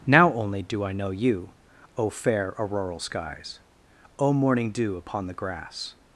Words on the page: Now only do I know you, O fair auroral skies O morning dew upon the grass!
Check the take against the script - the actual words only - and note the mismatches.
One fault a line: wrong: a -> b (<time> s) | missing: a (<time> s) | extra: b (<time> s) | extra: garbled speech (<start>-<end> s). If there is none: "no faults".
no faults